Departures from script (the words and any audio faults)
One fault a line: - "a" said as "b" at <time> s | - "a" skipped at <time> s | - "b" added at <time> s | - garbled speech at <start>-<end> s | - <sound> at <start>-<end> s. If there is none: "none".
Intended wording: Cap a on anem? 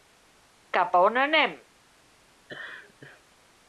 - laugh at 2.5-3.2 s